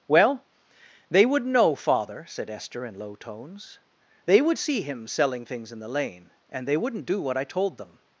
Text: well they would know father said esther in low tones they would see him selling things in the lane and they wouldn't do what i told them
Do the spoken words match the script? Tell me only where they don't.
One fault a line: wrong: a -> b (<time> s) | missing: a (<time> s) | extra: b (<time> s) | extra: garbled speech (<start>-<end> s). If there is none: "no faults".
no faults